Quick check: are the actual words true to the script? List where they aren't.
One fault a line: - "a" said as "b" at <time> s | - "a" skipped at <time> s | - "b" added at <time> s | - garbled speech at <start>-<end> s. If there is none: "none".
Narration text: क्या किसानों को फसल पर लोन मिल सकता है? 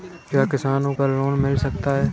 - "को फसल" skipped at 0.9 s